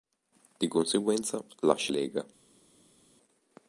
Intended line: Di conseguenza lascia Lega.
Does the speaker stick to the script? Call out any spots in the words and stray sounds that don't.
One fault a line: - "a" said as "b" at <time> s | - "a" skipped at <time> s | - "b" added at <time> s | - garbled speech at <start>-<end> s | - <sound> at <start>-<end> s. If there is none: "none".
none